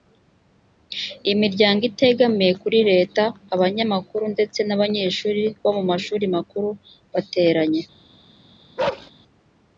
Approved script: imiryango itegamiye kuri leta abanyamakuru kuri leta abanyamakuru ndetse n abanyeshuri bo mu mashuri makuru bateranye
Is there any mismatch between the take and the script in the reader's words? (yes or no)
yes